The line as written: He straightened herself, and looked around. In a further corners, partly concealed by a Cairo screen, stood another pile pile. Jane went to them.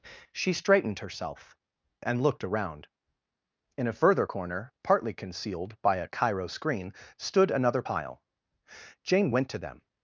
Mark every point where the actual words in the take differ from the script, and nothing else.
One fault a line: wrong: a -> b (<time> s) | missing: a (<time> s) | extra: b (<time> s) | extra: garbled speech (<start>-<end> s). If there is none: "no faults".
wrong: He -> She (0.3 s)
wrong: corners -> corner (4.2 s)
missing: pile (8.2 s)